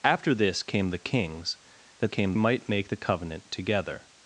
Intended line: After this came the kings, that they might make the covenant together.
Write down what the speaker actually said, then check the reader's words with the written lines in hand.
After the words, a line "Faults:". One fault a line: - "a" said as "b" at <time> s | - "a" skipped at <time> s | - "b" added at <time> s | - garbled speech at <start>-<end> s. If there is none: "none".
After this came the kings, that came might make the covenant together.
Faults:
- "they" said as "came" at 2.1 s